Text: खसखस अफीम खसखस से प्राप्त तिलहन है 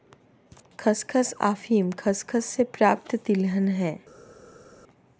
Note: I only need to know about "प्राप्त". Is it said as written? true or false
true